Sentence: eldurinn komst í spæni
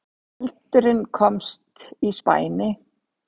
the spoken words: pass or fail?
pass